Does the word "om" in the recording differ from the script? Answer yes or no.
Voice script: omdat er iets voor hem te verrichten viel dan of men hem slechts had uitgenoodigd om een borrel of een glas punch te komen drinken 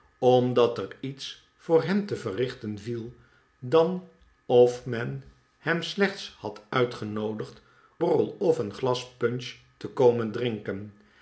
yes